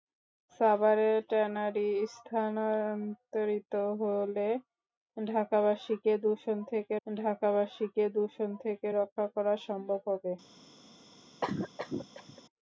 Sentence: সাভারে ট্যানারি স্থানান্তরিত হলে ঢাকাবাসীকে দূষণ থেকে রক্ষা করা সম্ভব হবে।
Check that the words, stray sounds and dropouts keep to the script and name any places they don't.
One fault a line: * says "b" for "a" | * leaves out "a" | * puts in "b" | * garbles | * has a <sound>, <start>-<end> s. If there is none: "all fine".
* puts in "ঢাকাবাসীকে দূষণ থেকে"
* has a cough, 11.4-12.4 s